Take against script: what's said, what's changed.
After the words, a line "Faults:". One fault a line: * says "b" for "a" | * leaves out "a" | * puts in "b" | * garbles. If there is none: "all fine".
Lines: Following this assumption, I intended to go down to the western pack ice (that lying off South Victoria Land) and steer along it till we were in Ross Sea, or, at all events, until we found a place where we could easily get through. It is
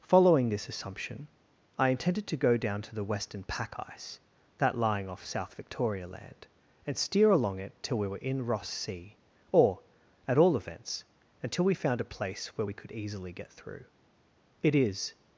Following this assumption, I intended to go down to the western pack ice (that lying off South Victoria Land) and steer along it till we were in Ross Sea, or, at all events, until we found a place where we could easily get through. It is
Faults:
all fine